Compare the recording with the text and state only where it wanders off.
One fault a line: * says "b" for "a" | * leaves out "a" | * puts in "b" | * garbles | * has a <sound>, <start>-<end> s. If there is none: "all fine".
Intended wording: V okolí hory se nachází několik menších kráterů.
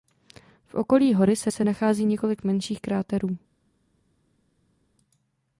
* puts in "se"